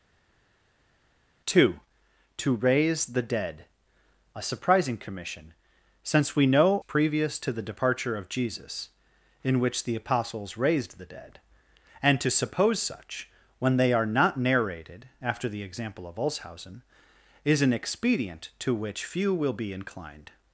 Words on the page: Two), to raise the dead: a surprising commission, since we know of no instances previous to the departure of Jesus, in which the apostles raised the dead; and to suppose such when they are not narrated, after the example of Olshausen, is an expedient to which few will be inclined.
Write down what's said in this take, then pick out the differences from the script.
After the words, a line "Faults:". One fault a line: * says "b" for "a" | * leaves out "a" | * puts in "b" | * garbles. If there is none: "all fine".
Two), to raise the dead: a surprising commission, since we know previous to the departure of Jesus, in which the apostles raised the dead; and to suppose such when they are not narrated, after the example of Olshausen, is an expedient to which few will be inclined.
Faults:
* leaves out "of no instances"